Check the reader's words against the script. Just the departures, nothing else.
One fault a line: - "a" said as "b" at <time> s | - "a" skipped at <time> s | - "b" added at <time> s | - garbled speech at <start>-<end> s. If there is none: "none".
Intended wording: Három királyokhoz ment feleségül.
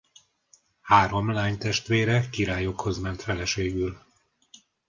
- "lánytestvére" added at 1.3 s